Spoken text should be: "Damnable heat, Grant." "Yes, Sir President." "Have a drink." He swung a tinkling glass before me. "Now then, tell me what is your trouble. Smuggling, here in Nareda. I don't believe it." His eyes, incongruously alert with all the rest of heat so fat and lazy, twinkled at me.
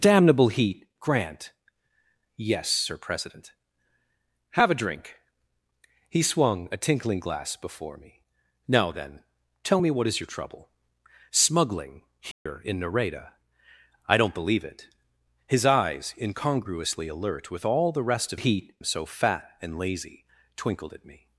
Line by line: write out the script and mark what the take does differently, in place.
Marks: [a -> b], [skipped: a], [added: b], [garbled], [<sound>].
"Damnable heat, Grant." "Yes, Sir President." "Have a drink." He swung a tinkling glass before me. "Now then, tell me what is your trouble. Smuggling, here [dropout] in Nareda. I don't believe it." His eyes, incongruously alert with all the rest of heat so fat and lazy, twinkled at me.